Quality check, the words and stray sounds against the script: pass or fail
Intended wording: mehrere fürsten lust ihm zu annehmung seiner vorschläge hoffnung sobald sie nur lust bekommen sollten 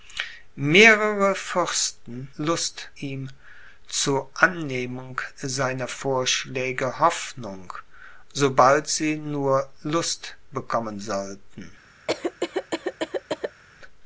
fail